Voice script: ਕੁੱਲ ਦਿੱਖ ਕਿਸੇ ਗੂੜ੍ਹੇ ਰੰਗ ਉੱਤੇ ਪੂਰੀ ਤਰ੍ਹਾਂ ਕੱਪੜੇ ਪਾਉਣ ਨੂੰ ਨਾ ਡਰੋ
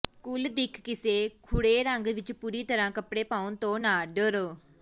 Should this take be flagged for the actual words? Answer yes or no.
yes